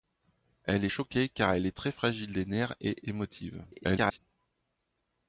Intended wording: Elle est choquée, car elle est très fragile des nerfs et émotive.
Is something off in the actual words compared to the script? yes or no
yes